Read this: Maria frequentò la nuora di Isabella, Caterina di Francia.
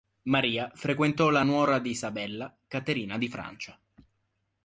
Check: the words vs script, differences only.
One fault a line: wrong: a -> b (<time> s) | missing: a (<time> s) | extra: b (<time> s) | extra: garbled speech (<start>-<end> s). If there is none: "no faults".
no faults